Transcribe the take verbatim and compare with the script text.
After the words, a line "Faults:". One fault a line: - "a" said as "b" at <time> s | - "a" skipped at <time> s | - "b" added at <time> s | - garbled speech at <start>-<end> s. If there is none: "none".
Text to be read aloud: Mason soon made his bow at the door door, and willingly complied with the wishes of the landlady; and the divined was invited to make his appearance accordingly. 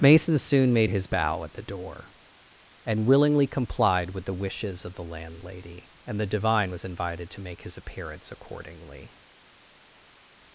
Mason soon made his bow at the door, and willingly complied with the wishes of the landlady; and the divine was invited to make his appearance accordingly.
Faults:
- "door" skipped at 2.1 s
- "divined" said as "divine" at 6.2 s